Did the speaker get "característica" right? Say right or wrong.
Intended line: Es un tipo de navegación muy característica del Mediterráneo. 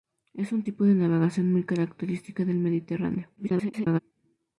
right